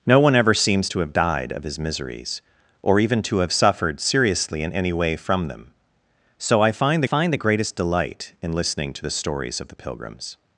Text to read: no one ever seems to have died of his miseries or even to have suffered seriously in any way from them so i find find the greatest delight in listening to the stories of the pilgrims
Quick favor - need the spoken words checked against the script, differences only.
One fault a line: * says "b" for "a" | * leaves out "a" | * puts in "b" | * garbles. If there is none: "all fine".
all fine